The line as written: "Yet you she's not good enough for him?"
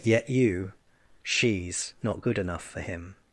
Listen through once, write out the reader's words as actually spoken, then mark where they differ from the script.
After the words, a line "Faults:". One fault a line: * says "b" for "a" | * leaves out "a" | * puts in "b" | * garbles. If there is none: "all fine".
"Yet you she's not good enough for him?"
Faults:
all fine